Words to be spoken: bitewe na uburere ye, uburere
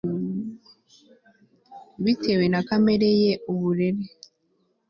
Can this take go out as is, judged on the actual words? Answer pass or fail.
fail